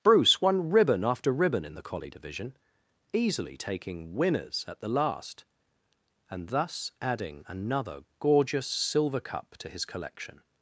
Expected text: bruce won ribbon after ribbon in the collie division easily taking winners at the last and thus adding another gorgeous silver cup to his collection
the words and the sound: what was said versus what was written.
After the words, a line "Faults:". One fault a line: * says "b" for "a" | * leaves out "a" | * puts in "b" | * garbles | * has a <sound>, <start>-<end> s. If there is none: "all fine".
bruce won ribbon after ribbon in the collie division easily taking winners at the last and thus adding another gorgeous silver cup to his collection
Faults:
all fine